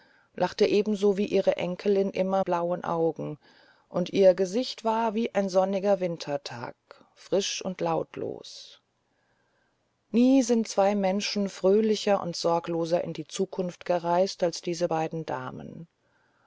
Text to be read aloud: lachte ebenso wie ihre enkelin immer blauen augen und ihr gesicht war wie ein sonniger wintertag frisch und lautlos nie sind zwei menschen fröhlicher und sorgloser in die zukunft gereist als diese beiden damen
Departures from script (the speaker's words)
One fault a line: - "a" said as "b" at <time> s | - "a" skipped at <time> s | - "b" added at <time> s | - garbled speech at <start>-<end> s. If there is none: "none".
none